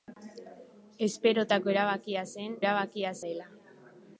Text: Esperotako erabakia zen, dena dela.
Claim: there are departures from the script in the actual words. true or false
true